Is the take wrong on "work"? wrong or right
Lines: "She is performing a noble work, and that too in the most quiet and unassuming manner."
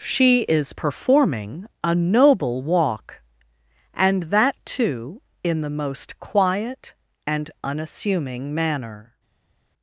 wrong